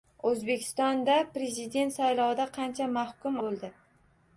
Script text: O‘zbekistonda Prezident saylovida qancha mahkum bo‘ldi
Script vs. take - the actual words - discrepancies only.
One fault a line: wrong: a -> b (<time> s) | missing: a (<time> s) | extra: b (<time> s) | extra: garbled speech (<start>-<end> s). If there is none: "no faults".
no faults